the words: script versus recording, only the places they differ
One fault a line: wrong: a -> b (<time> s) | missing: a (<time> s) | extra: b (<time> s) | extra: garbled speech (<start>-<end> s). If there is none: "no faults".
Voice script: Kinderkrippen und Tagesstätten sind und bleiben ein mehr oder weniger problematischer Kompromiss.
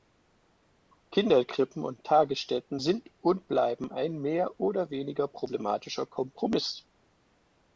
no faults